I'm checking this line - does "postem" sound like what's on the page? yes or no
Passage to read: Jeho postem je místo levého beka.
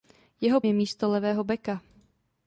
no